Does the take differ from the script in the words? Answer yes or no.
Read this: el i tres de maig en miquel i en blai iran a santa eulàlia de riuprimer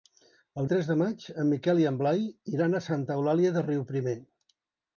no